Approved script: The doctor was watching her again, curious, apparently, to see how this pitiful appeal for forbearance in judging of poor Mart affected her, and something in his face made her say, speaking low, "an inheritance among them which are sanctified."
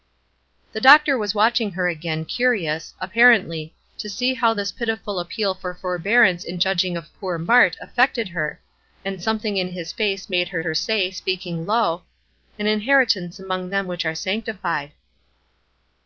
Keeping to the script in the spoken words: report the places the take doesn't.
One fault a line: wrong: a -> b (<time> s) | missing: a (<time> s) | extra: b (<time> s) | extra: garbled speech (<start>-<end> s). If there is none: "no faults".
extra: her (10.6 s)